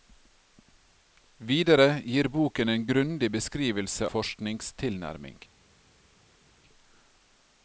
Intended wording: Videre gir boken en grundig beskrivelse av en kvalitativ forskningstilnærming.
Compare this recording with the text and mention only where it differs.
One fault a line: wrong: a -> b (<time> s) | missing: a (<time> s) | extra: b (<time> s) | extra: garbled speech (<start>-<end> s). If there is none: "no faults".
missing: av en kvalitativ (4.1 s)